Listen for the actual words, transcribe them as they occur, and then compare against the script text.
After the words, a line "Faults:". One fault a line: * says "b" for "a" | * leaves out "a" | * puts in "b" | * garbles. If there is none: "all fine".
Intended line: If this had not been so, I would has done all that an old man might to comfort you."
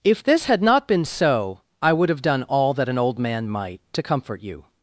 If this had not been so, I would have done all that an old man might to comfort you."
Faults:
* says "have" for "has"